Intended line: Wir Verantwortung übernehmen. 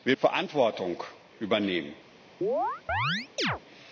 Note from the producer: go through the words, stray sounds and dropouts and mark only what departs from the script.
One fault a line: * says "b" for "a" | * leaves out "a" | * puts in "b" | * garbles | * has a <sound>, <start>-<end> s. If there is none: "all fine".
* has a chirp, 2.4-3.6 s